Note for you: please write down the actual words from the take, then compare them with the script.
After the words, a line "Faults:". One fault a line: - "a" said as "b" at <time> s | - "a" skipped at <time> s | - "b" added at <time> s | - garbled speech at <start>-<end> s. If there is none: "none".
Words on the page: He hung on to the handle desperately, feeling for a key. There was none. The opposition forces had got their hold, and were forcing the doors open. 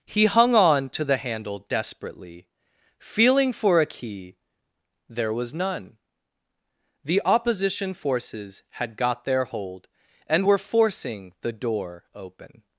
He hung on to the handle desperately, feeling for a key. There was none. The opposition forces had got their hold, and were forcing the door open.
Faults:
- "doors" said as "door" at 11.5 s